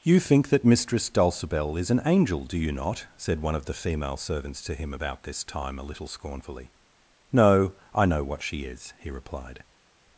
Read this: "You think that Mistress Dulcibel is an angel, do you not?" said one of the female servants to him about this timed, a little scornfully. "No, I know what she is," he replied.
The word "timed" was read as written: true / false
false